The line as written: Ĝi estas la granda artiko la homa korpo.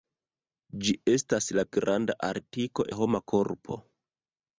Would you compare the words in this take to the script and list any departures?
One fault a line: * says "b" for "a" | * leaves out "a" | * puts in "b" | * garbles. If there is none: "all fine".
all fine